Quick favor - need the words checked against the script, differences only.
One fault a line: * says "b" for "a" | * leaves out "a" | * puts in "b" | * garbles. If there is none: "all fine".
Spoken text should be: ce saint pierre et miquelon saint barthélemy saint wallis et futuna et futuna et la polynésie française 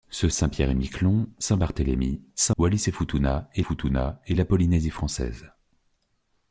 all fine